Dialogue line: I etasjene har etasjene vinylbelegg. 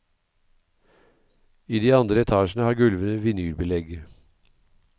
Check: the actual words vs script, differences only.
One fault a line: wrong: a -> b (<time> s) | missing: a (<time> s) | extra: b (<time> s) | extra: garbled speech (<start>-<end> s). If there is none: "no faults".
extra: de andre (1.8 s)
wrong: etasjene -> gulvene (2.8 s)